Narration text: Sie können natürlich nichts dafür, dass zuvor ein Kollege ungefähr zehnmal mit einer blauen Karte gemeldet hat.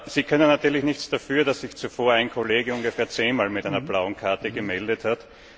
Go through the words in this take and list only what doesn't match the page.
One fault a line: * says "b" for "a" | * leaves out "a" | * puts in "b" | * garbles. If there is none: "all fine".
* puts in "sich"